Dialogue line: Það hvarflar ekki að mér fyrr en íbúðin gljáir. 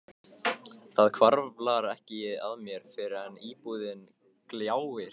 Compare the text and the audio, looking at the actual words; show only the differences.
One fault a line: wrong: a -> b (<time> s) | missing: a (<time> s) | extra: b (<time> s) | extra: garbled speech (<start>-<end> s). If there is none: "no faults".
no faults